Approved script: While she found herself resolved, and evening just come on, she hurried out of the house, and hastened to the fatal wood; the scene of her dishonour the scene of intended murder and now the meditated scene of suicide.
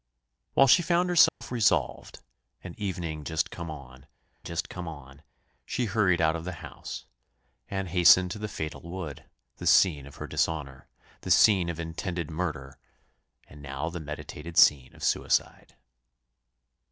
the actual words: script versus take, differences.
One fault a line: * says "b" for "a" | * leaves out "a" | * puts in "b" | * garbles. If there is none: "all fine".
* puts in "just come on"